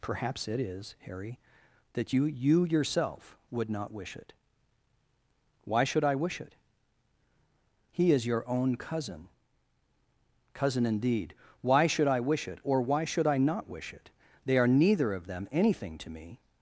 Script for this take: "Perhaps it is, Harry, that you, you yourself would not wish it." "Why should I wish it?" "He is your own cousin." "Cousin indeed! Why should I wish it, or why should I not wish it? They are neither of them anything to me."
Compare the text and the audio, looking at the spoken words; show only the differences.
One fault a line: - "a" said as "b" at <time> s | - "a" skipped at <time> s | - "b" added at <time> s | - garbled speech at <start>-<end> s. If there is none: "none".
none